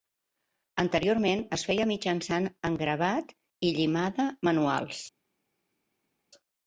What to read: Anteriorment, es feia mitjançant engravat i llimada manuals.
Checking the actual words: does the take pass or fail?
pass